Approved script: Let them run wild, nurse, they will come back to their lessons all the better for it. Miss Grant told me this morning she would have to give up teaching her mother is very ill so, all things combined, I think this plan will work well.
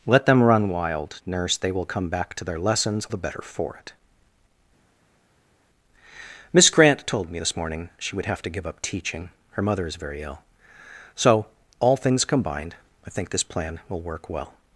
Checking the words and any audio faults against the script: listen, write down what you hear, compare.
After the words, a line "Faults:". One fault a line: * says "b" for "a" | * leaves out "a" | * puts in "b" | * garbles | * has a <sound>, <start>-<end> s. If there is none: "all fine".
Let them run wild, nurse, they will come back to their lessons the better for it. Miss Grant told me this morning she would have to give up teaching her mother is very ill so, all things combined, I think this plan will work well.
Faults:
* leaves out "all"